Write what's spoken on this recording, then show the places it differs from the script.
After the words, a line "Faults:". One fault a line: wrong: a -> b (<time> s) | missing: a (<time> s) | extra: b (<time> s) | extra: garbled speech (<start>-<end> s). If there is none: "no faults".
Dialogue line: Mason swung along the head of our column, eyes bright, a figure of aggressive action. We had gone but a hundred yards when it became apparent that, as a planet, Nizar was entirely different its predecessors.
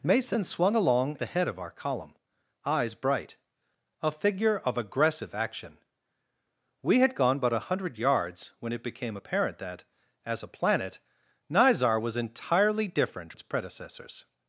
Mason swung along the head of our column, eyes bright, a figure of aggressive action. We had gone but a hundred yards when it became apparent that, as a planet, Nizar was entirely different its predecessors.
Faults:
no faults